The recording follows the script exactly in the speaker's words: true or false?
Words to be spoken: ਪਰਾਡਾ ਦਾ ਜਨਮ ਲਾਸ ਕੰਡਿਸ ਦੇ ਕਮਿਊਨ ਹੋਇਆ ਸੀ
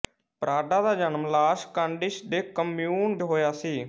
true